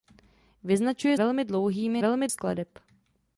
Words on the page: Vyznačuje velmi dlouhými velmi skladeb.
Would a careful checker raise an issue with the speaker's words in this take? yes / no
no